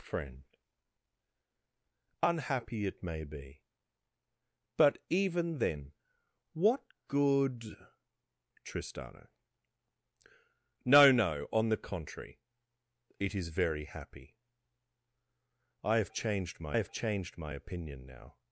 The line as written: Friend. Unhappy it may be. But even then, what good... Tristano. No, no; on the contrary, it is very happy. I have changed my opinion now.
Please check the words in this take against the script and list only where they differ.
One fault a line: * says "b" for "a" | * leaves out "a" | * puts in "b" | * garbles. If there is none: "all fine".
* puts in "have changed my"